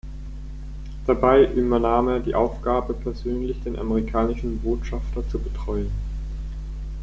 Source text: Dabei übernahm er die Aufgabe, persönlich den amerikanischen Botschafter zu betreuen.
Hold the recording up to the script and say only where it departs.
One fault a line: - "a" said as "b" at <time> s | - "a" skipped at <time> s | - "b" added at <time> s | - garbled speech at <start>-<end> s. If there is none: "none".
none